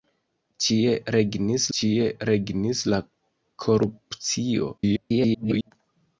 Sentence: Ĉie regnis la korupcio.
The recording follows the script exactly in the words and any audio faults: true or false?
false